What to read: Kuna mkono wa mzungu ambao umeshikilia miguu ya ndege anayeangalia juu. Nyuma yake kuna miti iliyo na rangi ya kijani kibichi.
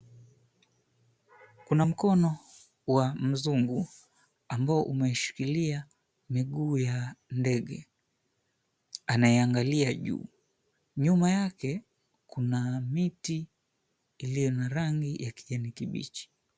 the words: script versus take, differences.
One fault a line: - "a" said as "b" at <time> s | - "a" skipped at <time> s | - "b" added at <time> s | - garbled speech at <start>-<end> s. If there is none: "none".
none